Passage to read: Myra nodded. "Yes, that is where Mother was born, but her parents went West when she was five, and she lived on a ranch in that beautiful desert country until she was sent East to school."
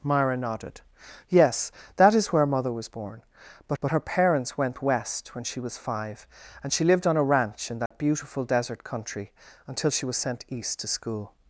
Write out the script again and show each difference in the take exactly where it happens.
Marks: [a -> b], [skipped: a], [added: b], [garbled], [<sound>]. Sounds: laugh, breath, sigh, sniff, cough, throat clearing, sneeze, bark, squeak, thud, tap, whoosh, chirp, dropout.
Myra nodded. "Yes, that is where Mother was born, but [added: but] her parents went West when she was five, and she lived on a ranch in that [dropout] beautiful desert country until she was sent East to school."